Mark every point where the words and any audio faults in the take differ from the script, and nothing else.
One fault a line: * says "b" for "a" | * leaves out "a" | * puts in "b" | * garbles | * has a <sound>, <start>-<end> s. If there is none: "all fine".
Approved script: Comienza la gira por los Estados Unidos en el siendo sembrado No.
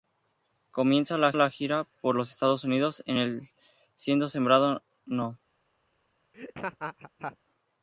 * puts in "la"
* has a laugh, 6.3-7.4 s